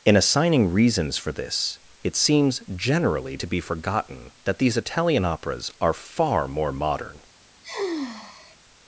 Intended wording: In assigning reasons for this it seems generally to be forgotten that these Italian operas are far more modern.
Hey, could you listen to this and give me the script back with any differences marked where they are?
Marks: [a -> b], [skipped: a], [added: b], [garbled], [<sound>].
In assigning reasons for this it seems generally to be forgotten that these Italian operas are far more modern. [sigh]